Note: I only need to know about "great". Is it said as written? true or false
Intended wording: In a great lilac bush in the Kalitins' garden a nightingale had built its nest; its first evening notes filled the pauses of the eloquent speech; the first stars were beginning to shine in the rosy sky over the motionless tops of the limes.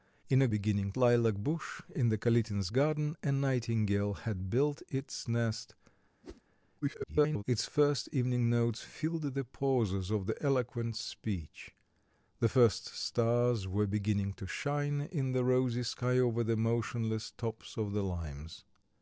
false